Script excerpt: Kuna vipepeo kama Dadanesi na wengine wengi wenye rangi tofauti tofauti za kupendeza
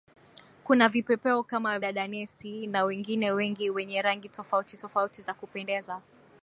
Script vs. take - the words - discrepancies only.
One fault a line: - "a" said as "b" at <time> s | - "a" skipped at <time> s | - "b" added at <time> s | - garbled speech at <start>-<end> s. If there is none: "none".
none